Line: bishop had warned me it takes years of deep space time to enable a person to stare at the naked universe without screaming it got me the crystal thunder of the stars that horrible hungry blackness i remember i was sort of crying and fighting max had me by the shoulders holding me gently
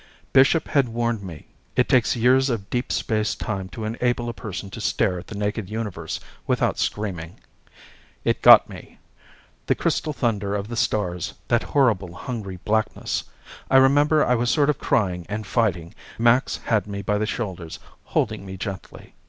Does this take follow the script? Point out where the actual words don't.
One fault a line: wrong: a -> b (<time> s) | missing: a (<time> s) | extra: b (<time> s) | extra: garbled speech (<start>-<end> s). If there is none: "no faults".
no faults